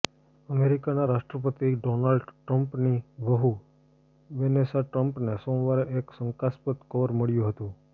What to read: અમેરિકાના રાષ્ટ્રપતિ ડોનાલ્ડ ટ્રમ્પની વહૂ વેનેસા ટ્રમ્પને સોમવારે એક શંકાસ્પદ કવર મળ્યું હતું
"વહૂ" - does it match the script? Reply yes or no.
yes